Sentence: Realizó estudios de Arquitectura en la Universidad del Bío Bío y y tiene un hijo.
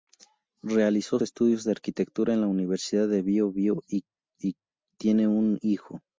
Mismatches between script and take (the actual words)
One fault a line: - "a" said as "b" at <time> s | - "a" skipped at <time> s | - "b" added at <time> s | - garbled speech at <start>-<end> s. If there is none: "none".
none